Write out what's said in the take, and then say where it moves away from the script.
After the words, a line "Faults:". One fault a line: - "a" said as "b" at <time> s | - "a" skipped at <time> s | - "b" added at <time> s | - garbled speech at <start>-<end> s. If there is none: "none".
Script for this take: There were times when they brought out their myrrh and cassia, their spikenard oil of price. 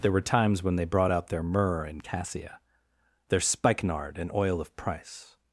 There were times when they brought out their myrrh and cassia, their spikenard and oil of price.
Faults:
- "and" added at 4.2 s